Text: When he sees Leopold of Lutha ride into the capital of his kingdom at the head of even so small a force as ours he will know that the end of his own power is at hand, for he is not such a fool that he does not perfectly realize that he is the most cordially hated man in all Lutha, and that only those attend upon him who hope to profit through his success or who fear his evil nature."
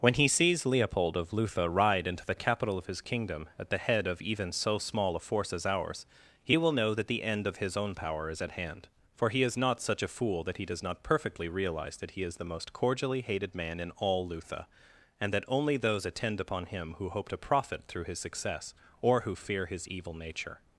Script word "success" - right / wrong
right